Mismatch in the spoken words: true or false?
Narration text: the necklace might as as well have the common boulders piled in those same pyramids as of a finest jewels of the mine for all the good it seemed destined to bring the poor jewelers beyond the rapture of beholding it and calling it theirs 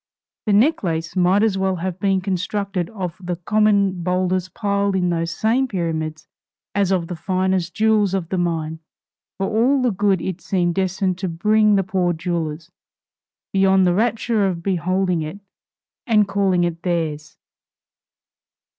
true